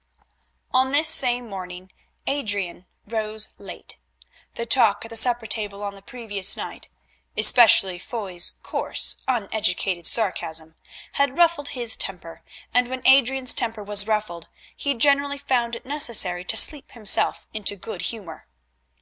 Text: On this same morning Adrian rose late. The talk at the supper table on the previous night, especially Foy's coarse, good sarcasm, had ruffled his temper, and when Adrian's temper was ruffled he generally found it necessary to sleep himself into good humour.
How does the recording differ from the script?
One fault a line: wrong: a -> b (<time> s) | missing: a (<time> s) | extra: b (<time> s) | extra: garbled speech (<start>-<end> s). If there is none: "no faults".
wrong: good -> uneducated (9.3 s)